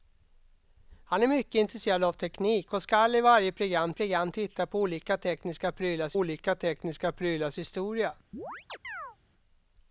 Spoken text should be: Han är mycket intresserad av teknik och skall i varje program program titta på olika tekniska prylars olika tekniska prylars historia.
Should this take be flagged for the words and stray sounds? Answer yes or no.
yes